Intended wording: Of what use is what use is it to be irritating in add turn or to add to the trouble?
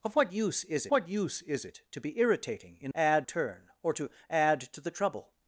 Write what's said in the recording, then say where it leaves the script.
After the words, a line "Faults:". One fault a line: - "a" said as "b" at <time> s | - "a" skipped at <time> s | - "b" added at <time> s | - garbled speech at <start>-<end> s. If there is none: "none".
Of what use is what use is it to be irritating in add turn or to add to the trouble?
Faults:
none